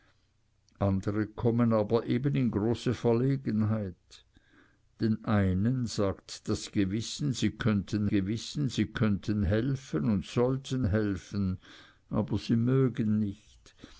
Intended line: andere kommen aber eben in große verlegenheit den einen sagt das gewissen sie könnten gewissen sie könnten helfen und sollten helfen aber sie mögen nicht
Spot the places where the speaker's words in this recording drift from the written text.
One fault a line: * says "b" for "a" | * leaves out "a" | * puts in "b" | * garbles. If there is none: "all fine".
all fine